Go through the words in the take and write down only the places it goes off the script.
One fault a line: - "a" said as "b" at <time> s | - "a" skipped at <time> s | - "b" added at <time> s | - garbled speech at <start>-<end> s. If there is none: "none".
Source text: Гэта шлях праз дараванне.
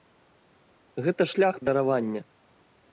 - "праз" skipped at 1.6 s